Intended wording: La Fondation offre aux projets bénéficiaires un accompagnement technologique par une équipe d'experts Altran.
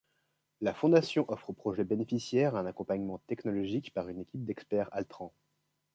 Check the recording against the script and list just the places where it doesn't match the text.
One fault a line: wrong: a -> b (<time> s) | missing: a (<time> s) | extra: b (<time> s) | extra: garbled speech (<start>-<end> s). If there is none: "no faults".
no faults